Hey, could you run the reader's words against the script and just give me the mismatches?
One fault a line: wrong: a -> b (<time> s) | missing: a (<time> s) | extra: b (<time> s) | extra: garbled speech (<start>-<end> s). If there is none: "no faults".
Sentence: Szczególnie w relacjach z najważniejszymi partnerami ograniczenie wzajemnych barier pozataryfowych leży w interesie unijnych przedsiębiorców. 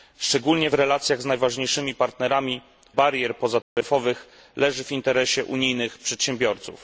missing: ograniczenie wzajemnych (2.6 s)